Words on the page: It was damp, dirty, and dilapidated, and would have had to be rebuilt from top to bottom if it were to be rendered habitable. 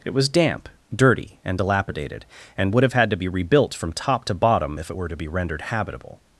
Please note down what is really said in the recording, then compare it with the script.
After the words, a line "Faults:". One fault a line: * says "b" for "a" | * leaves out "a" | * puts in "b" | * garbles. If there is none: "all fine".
It was damp, dirty, and dilapidated, and would have had to be rebuilt from top to bottom if it were to be rendered habitable.
Faults:
all fine